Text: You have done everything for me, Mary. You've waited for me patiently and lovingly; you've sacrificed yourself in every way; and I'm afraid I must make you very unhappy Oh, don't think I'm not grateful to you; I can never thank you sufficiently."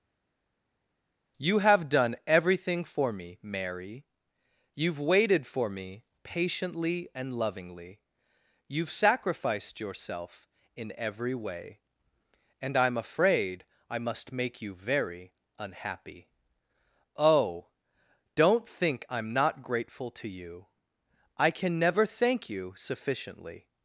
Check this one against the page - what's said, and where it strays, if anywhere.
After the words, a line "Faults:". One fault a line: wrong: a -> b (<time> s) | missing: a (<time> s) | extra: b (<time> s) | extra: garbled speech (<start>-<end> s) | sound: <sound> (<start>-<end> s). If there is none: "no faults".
You have done everything for me, Mary. You've waited for me patiently and lovingly; you've sacrificed yourself in every way; and I'm afraid I must make you very unhappy Oh, don't think I'm not grateful to you; I can never thank you sufficiently."
Faults:
no faults